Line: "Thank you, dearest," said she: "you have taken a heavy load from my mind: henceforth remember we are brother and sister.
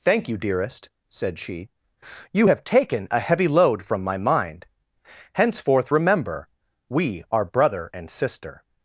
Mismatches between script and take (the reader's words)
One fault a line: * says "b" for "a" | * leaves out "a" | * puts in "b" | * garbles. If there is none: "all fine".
all fine